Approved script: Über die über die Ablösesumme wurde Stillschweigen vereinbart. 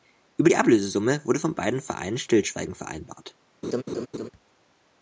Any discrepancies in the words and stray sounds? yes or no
yes